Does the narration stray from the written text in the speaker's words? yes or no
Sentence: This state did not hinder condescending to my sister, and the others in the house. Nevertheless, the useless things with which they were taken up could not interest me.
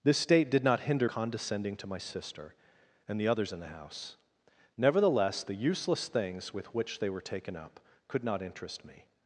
no